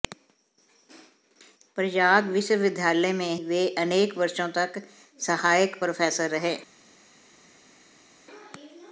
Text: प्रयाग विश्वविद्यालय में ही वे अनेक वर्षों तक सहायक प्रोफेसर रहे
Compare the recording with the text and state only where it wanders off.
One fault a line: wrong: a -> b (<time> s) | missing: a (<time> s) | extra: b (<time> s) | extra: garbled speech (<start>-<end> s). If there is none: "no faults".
missing: ही (3.4 s)